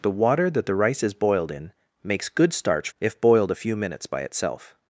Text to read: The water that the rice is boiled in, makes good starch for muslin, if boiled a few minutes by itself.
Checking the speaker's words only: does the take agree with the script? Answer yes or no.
no